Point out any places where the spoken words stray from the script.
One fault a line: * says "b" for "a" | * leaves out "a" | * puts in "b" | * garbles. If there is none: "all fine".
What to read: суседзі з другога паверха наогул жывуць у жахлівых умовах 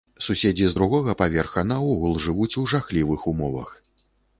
all fine